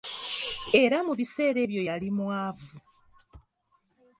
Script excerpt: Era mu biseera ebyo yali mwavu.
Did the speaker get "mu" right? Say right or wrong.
right